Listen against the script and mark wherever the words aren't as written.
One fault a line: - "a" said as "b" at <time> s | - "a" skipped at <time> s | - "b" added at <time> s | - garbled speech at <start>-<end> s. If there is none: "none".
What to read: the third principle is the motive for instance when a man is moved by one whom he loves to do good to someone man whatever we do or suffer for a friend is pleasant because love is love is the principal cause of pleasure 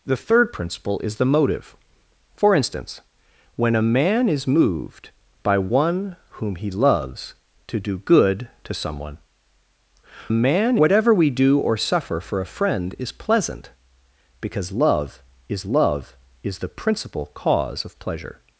none